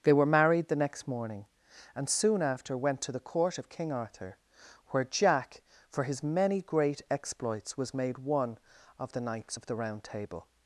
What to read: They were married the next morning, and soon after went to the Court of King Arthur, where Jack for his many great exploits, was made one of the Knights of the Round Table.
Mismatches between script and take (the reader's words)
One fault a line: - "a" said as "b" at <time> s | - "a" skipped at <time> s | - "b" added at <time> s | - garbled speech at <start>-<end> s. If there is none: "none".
none